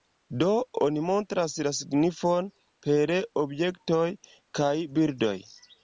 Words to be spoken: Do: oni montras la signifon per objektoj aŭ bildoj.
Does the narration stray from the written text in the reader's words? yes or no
yes